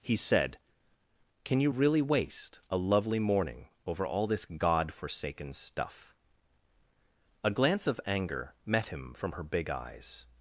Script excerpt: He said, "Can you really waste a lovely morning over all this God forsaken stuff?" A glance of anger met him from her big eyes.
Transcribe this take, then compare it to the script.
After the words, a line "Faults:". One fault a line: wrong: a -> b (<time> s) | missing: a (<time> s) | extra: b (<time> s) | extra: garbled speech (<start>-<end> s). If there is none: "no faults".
He said, "Can you really waste a lovely morning over all this God forsaken stuff?" A glance of anger met him from her big eyes.
Faults:
no faults